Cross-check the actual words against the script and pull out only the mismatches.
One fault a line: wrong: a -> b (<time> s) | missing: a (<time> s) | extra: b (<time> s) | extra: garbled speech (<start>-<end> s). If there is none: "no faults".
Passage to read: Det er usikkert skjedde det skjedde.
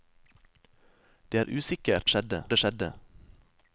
no faults